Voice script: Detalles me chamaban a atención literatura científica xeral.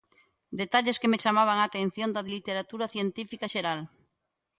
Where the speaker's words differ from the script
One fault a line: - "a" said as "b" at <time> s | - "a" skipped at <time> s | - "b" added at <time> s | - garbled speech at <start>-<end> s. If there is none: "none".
- "que" added at 1.0 s
- "da" added at 2.1 s